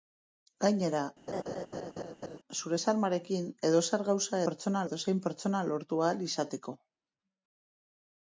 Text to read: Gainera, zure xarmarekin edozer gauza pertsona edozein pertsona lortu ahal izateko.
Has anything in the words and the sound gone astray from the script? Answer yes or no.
yes